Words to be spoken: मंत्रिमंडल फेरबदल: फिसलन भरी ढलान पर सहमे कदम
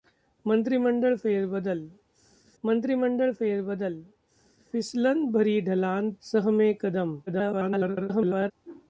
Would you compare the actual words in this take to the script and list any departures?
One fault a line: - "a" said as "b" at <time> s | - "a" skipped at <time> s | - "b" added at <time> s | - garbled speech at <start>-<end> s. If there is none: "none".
- "मंत्रिमंडल फेरबदल" added at 2.6 s
- "पर" skipped at 6.1 s
- garbled speech at 7.3-8.5 s